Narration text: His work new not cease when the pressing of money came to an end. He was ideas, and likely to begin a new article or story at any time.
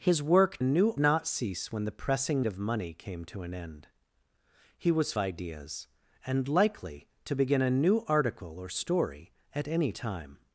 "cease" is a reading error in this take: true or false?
false